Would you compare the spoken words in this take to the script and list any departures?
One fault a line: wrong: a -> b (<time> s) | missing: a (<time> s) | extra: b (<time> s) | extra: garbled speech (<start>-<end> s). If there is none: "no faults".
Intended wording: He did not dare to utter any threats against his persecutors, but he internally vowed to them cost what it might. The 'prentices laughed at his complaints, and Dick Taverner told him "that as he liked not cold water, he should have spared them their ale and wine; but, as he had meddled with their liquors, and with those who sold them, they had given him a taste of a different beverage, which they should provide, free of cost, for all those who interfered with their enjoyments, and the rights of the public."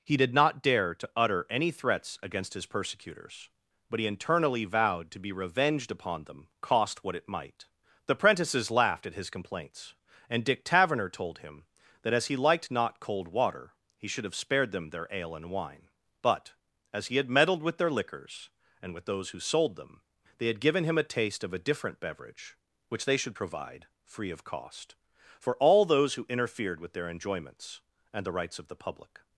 extra: be revenged upon (5.2 s)